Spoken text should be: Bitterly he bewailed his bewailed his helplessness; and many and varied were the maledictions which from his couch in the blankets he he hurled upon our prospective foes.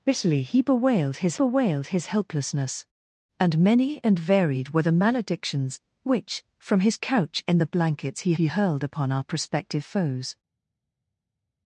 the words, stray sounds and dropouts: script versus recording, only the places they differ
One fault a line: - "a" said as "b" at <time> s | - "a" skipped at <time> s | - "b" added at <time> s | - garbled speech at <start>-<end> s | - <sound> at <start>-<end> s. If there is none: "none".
none